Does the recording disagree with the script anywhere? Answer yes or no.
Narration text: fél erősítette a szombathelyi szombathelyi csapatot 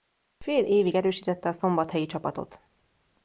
yes